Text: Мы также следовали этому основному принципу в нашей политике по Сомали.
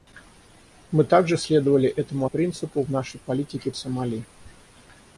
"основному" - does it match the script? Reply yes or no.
no